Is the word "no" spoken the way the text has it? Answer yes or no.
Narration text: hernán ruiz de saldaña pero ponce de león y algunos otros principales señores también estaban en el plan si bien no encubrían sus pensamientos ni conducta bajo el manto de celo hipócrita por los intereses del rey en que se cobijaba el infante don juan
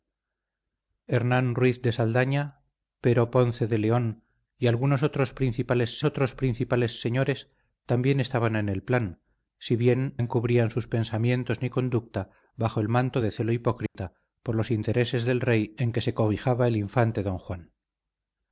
no